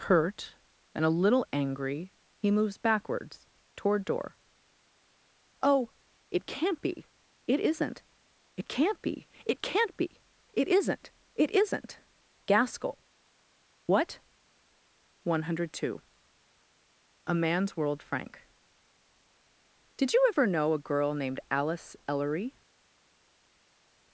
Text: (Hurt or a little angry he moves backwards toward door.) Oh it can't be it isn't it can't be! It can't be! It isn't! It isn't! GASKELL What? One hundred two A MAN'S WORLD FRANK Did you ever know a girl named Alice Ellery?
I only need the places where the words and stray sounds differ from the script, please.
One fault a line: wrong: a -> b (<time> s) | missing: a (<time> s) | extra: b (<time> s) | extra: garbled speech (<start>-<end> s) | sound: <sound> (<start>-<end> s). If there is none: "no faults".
wrong: or -> and (0.9 s)